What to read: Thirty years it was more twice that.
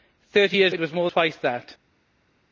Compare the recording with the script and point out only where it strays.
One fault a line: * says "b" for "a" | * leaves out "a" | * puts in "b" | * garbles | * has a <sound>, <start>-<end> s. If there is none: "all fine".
all fine